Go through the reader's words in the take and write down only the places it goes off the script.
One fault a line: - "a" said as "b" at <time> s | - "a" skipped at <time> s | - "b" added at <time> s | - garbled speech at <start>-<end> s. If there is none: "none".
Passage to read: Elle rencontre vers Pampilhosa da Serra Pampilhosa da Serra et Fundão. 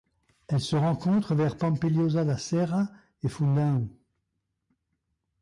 - "se" added at 0.6 s
- "Pampilhosa da Serra" skipped at 2.9 s